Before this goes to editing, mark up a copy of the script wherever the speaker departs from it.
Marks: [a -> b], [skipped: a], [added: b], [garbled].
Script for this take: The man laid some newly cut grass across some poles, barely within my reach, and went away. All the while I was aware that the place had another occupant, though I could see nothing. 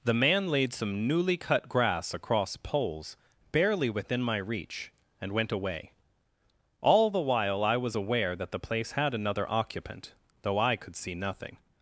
The man laid some newly cut grass across [skipped: some] poles, barely within my reach, and went away. All the while I was aware that the place had another occupant, though I could see nothing.